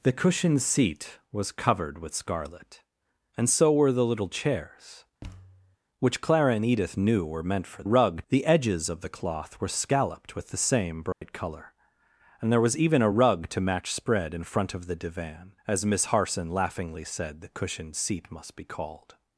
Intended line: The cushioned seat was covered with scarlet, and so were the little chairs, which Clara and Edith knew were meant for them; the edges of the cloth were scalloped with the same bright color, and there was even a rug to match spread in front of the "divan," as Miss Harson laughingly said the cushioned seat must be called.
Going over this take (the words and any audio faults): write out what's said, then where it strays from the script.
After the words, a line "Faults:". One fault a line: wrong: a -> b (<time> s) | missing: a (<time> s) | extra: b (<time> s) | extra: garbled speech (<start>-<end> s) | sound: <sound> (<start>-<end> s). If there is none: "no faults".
The cushioned seat was covered with scarlet, and so were the little chairs, which Clara and Edith knew were meant for rug; the edges of the cloth were scalloped with the same bright color, and there was even a rug to match spread in front of the "divan," as Miss Harson laughingly said the cushioned seat must be called.
Faults:
sound: thud (5.2-5.8 s)
wrong: them -> rug (7.8 s)
sound: dropout (11.1-11.2 s)